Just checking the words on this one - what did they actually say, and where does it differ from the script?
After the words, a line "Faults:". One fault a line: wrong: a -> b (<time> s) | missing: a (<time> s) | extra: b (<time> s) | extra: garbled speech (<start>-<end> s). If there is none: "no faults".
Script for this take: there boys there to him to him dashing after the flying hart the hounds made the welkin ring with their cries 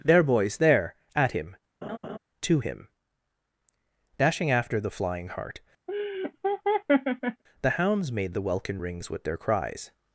there boys there at him to him dashing after the flying hart the hounds made the welkin rings with their cries
Faults:
wrong: to -> at (1.1 s)
wrong: ring -> rings (8.8 s)